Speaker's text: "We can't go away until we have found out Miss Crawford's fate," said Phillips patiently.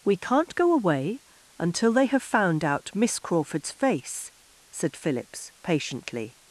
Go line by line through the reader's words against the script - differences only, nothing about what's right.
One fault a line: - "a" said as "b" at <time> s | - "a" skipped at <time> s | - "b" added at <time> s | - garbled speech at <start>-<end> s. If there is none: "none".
- "we" said as "they" at 1.9 s
- "fate" said as "face" at 3.7 s